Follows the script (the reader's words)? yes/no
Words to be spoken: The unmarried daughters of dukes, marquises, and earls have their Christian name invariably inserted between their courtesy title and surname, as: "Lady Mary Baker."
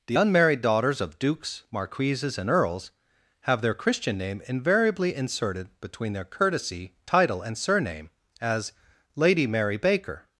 yes